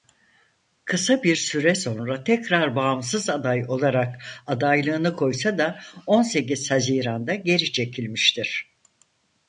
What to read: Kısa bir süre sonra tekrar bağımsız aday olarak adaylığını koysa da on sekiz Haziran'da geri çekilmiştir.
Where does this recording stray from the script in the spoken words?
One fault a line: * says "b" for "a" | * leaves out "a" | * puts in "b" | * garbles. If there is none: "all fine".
all fine